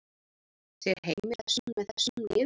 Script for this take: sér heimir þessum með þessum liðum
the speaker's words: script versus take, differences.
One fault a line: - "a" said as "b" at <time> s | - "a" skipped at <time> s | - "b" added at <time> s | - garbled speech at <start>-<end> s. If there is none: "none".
none